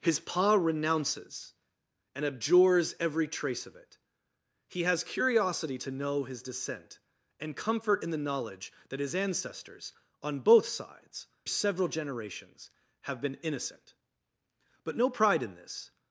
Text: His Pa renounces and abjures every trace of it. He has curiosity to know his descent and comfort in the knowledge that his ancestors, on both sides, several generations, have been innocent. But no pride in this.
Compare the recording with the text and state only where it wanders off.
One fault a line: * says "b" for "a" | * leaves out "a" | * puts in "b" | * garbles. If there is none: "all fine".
all fine